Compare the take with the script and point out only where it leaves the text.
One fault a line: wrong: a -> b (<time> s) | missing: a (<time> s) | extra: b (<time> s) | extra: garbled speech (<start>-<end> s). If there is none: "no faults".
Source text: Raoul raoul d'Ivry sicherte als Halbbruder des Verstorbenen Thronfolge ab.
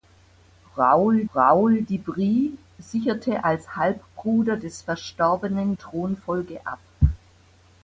no faults